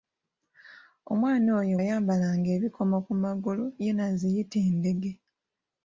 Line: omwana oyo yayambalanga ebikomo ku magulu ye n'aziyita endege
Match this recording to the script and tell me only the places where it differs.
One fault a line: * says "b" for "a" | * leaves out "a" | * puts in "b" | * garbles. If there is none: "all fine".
all fine